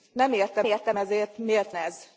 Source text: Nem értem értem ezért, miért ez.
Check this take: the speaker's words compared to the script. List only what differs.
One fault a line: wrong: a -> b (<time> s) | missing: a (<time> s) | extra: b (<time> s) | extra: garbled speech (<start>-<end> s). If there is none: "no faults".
no faults